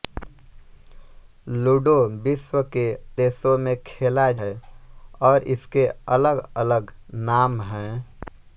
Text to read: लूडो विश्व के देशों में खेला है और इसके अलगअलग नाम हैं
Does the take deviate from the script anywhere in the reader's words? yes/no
no